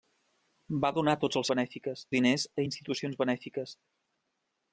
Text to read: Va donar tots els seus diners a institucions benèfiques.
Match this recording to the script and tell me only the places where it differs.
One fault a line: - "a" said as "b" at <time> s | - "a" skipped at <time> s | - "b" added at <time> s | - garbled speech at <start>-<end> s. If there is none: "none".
- "seus" said as "benèfiques" at 1.5 s